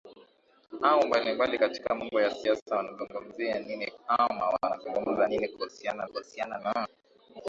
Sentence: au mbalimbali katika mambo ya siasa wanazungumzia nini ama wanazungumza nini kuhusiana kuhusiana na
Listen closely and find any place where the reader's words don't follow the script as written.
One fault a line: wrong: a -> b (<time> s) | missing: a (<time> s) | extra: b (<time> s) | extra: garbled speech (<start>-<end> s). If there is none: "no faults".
no faults